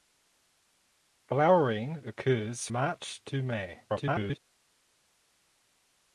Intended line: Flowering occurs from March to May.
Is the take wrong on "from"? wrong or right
wrong